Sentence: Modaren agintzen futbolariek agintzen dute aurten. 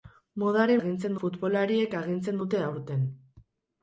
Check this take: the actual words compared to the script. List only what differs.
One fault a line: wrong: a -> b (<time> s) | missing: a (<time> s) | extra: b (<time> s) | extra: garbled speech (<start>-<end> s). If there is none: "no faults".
no faults